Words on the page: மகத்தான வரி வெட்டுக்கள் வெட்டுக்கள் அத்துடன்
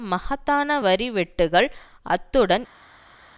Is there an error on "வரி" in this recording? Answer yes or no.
no